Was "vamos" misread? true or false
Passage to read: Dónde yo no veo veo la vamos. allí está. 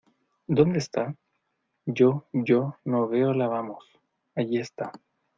false